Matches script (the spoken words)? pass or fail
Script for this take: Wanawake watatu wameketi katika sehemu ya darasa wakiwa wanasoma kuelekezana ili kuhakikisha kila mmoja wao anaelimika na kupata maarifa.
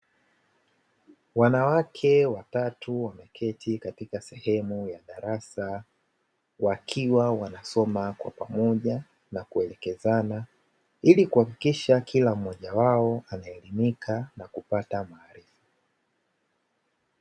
fail